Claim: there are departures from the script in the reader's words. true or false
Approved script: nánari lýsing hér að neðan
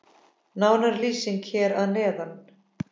false